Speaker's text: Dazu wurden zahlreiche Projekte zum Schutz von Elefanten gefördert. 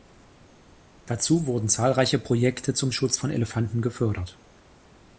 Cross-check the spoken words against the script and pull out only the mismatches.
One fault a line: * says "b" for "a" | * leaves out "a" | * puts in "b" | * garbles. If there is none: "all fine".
all fine